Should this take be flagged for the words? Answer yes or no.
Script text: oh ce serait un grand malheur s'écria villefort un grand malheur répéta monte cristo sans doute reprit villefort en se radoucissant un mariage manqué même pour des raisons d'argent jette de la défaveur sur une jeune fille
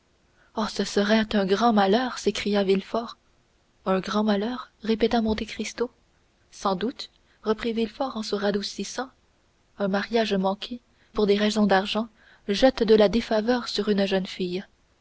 yes